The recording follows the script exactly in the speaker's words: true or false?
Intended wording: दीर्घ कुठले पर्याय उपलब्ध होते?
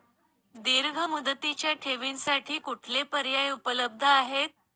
false